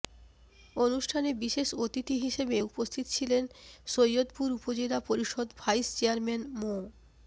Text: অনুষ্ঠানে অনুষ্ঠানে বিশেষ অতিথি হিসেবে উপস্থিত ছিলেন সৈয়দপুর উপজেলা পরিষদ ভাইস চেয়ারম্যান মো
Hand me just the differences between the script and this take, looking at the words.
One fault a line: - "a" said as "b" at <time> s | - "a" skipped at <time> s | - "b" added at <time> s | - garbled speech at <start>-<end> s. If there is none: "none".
- "অনুষ্ঠানে" skipped at 1.3 s